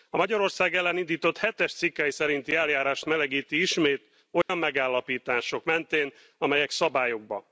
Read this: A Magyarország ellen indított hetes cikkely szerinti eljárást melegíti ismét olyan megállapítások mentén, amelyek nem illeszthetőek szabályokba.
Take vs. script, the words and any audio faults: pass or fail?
fail